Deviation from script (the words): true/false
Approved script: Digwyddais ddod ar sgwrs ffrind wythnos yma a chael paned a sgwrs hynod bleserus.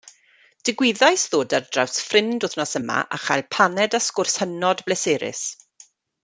true